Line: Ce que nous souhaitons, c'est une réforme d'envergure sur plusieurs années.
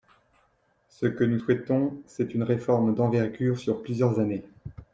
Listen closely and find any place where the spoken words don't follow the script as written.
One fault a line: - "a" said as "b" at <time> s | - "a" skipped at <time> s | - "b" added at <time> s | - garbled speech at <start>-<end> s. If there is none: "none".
none